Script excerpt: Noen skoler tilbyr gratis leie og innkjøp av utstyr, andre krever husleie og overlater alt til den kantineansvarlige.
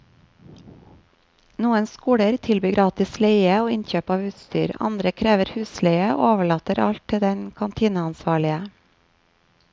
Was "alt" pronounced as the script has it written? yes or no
yes